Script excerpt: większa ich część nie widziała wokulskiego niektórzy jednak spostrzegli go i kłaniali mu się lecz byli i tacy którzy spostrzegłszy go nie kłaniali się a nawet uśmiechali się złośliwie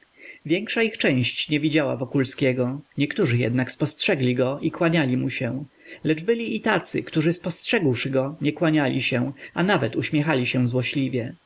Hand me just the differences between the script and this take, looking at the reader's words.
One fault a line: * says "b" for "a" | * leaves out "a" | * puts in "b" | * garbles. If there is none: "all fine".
all fine